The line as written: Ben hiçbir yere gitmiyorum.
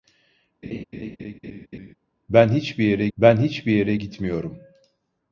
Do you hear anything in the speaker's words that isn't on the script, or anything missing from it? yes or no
yes